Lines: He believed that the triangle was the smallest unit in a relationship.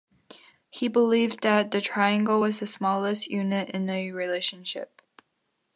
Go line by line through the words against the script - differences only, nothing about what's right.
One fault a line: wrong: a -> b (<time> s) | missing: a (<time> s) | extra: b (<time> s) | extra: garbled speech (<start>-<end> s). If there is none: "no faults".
no faults